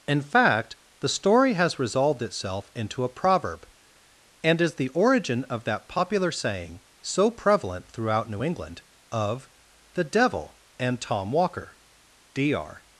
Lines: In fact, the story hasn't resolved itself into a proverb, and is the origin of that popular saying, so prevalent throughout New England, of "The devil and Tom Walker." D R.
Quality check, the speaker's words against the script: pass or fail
fail